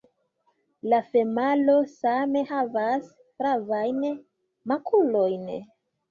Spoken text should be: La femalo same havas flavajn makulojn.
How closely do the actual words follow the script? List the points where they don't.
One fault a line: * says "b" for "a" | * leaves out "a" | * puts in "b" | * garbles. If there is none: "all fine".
all fine